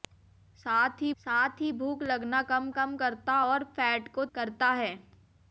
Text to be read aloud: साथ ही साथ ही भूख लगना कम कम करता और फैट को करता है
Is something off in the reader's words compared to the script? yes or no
no